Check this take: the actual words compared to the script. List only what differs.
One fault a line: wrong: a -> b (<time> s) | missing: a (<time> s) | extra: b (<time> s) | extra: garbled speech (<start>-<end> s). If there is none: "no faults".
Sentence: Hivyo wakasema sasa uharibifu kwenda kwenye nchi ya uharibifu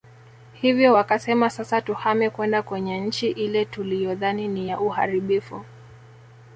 wrong: uharibifu -> tuhame (1.8 s)
extra: ile tuliyodhani ni (3.3 s)